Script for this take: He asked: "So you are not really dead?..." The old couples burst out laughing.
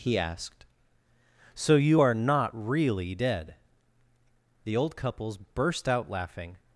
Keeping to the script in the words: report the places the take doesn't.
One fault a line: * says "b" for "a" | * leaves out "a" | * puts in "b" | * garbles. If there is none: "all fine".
all fine